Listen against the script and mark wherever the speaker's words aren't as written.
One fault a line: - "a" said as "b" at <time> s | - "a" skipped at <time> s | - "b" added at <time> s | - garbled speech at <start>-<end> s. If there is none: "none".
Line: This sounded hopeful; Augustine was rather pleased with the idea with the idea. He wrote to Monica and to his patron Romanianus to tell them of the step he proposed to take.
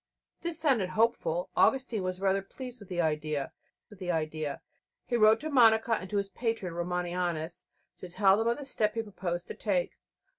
none